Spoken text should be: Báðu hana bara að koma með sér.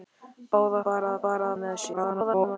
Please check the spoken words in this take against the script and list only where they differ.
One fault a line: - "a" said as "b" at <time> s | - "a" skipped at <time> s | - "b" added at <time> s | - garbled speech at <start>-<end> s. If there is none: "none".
- "hana" skipped at 0.8 s
- "koma" said as "bara" at 1.2 s
- garbled speech at 1.9-2.6 s